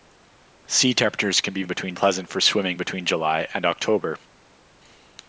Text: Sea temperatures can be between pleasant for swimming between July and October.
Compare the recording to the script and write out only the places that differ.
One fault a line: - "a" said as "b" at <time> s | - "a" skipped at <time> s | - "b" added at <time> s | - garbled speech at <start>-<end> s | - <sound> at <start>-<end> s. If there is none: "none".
none